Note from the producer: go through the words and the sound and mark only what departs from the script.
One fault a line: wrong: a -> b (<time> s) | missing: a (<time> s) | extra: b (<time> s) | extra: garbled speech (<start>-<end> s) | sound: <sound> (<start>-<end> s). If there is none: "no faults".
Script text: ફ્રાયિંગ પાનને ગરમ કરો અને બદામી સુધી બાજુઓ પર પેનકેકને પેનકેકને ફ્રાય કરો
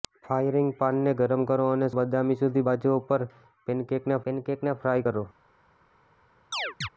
sound: chirp (6.5-6.9 s)